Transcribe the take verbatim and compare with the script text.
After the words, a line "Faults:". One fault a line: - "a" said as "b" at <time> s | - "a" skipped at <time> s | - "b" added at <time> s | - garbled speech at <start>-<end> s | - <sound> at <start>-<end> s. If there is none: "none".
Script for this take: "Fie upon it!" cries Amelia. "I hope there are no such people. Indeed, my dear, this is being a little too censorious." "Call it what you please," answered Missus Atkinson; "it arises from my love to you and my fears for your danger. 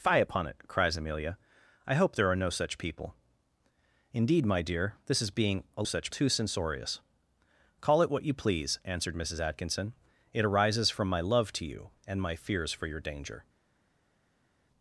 "Fie upon it!" cries Amelia. "I hope there are no such people. Indeed, my dear, this is being a such too censorious." "Call it what you please," answered Missus Atkinson; "it arises from my love to you and my fears for your danger.
Faults:
- "little" said as "such" at 5.8 s